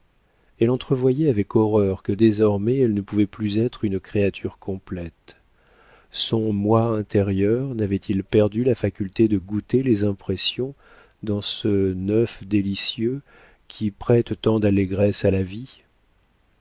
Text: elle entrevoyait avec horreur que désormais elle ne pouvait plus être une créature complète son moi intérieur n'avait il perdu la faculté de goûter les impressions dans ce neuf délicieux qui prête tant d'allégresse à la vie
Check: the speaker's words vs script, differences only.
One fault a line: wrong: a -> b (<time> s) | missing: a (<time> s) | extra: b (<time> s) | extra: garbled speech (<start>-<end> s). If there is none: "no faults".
no faults